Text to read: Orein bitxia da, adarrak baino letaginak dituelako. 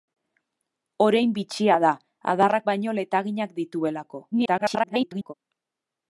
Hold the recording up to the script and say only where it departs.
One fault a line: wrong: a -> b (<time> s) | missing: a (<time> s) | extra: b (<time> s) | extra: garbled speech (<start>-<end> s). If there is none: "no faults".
extra: garbled speech (4.3-5.3 s)